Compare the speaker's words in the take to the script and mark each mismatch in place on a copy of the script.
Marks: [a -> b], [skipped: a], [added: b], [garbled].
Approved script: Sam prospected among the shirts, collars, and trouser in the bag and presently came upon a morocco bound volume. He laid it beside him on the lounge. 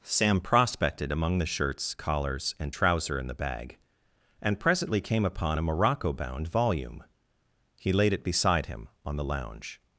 Sam prospected among the shirts, collars, and trouser in the bag and presently came upon a morocco bound volume. He laid it beside him on the lounge.